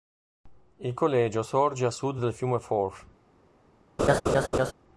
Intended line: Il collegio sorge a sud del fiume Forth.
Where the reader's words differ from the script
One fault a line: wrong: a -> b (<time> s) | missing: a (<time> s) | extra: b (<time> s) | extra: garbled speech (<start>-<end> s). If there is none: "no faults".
no faults